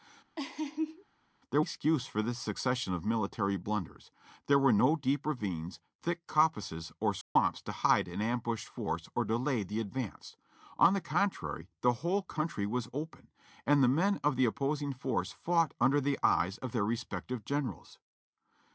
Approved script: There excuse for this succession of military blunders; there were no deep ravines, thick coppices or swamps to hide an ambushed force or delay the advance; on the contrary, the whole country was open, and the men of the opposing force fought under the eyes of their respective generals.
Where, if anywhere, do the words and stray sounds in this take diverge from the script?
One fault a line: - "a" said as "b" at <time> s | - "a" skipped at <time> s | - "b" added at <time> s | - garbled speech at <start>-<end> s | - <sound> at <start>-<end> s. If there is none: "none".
- laugh at 0.4-1.0 s
- dropout at 7.2-7.4 s